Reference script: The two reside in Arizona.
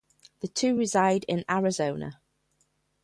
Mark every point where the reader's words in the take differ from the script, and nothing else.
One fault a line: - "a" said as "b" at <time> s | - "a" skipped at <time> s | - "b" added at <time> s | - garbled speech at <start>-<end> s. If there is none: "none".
none